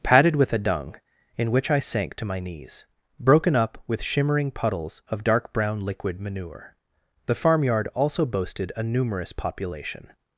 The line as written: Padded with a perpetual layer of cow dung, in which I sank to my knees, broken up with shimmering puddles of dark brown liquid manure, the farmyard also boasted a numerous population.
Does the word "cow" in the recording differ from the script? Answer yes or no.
yes